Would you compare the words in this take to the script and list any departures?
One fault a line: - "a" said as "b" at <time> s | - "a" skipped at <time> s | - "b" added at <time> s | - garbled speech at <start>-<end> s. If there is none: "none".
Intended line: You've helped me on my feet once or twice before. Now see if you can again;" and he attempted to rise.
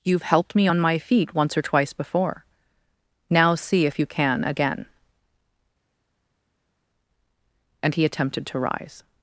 none